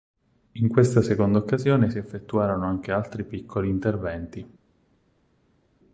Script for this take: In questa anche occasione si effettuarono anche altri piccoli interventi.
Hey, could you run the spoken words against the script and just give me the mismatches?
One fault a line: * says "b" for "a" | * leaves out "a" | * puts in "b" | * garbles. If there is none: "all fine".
* says "seconda" for "anche"